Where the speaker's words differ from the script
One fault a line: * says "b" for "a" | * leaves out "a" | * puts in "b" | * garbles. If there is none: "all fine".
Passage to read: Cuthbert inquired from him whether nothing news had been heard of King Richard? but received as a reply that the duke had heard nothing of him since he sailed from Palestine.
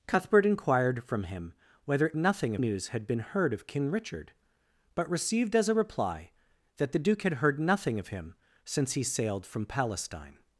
all fine